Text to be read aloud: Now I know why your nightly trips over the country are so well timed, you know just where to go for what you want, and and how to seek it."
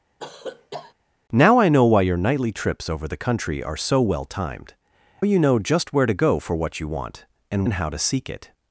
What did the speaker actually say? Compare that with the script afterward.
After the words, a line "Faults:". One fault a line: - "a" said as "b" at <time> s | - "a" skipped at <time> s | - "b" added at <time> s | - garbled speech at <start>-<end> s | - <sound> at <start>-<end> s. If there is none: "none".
Now I know why your nightly trips over the country are so well timed, you know just where to go for what you want, and and how to seek it."
Faults:
- cough at 0.2-0.9 s